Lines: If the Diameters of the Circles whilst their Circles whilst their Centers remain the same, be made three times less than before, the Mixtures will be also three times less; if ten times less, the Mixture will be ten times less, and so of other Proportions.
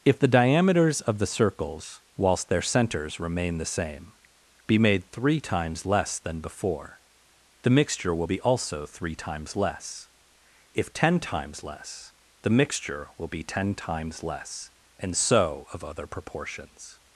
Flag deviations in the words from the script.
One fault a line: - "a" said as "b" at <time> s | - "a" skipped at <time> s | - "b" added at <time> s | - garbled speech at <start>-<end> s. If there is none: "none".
- "Circles whilst their" skipped at 2.6 s
- "Mixtures" said as "Mixture" at 7.7 s